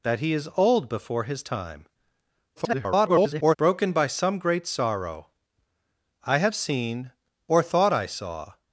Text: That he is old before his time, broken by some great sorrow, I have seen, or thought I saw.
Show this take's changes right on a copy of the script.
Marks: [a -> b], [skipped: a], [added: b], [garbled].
That he is old before his time, [garbled] broken by some great sorrow, I have seen, or thought I saw.